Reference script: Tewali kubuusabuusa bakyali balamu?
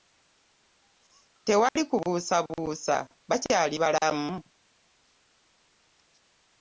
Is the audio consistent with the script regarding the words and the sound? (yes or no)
no